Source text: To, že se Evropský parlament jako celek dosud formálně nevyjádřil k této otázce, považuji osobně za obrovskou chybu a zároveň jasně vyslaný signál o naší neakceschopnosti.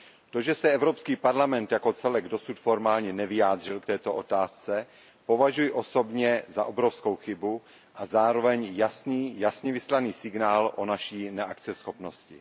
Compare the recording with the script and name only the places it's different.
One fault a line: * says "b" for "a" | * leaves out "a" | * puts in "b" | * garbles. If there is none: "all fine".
all fine